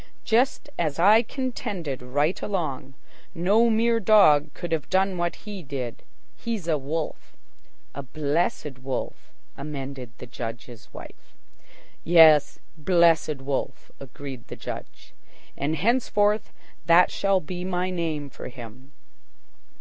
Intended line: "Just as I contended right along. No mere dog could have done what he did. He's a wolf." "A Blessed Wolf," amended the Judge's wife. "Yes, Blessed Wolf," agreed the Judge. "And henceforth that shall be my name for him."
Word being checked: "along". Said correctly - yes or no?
yes